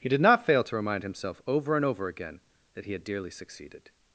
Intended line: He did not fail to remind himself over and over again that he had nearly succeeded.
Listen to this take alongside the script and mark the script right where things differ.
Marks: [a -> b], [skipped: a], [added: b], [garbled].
He did not fail to remind himself over and over again that he had [nearly -> dearly] succeeded.